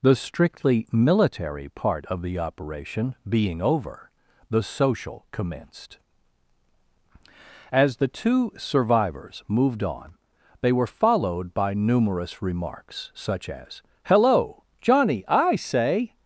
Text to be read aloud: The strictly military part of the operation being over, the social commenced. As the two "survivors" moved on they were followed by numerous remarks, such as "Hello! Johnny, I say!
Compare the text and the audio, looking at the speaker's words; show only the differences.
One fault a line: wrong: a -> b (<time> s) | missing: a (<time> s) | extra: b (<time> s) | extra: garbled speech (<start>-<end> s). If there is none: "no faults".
no faults